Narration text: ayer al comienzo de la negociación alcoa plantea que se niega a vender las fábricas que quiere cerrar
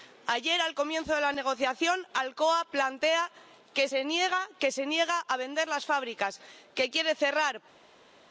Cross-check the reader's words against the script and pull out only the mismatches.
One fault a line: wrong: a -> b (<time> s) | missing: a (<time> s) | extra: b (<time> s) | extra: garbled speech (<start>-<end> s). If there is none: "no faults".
no faults